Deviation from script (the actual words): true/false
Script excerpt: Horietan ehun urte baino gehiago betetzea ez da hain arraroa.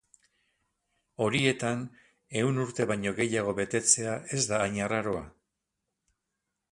false